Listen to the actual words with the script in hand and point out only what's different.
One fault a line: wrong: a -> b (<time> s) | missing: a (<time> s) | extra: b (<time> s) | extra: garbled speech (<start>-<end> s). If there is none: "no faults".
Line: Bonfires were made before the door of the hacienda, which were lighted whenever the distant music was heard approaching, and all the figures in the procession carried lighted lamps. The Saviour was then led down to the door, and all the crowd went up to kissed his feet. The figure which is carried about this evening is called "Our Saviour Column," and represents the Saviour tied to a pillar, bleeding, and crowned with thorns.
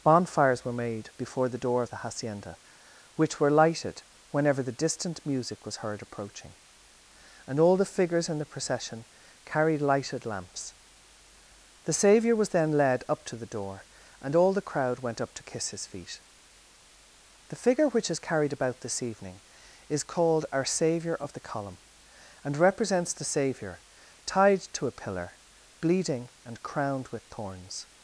wrong: down -> up (13.1 s)
wrong: kissed -> kiss (15.4 s)
extra: of the (21.1 s)